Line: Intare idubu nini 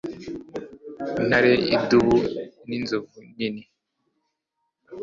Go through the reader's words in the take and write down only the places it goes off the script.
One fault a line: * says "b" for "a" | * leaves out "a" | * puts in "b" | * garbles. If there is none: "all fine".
* puts in "ninzovu"